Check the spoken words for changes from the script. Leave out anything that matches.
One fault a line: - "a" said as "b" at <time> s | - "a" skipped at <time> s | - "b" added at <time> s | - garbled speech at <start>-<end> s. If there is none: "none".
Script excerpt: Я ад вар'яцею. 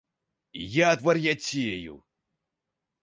none